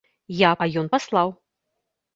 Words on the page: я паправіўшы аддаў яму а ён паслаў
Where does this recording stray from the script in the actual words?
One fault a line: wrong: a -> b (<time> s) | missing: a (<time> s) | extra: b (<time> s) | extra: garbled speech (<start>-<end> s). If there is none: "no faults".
missing: паправіўшы аддаў яму (0.5 s)